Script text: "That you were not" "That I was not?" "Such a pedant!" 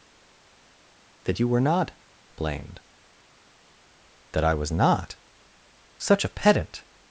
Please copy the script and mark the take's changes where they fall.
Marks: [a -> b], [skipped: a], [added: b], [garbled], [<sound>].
"That you were not" [added: blamed] "That I was not?" "Such a pedant!"